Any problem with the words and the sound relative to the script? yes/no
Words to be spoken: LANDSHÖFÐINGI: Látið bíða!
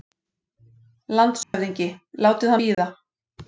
yes